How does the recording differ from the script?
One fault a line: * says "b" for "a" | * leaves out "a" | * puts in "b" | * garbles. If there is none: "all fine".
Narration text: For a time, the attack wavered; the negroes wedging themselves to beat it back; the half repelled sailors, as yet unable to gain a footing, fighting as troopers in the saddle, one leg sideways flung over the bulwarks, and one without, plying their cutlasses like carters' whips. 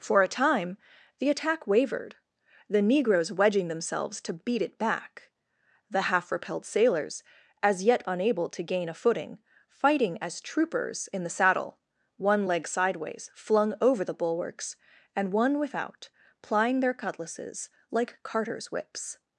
all fine